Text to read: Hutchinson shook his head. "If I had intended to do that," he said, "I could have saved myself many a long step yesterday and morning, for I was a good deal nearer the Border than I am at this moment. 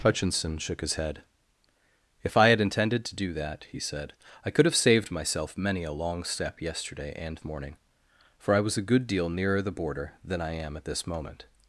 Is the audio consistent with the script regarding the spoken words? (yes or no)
yes